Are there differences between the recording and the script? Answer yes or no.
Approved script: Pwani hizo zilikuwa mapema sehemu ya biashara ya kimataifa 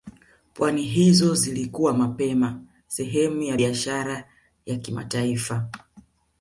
no